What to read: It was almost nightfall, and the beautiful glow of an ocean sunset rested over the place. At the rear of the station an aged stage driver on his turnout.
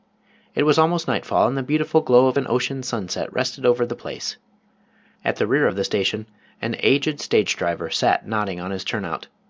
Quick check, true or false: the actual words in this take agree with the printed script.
false